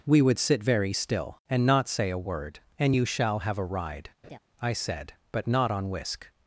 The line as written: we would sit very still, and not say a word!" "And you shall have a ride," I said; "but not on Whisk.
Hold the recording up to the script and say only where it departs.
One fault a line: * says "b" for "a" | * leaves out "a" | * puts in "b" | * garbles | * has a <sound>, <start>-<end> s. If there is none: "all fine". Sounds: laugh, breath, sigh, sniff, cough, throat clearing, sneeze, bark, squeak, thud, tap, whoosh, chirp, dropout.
* has a laugh, 4.2-4.4 s